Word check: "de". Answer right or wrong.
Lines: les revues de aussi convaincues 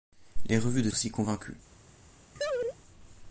right